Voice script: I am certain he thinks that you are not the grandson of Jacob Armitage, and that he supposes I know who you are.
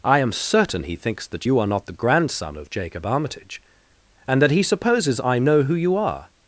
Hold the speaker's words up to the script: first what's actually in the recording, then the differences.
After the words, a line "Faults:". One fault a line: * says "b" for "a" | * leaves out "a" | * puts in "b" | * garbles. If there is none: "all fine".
I am certain he thinks that you are not the grandson of Jacob Armitage, and that he supposes I know who you are.
Faults:
all fine